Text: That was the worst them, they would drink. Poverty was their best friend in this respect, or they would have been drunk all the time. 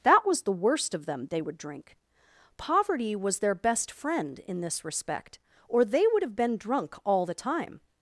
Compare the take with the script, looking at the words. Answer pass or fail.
fail